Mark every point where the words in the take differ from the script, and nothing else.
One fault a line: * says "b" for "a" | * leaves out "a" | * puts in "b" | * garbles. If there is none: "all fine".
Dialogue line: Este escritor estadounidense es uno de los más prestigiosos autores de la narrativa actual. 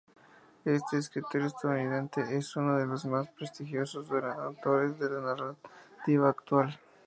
all fine